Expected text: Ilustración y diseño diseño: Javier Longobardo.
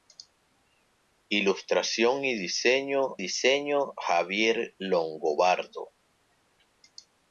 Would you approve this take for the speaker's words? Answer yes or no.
yes